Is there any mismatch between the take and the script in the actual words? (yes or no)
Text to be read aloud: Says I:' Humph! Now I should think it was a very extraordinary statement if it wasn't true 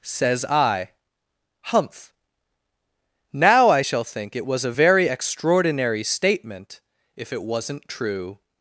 yes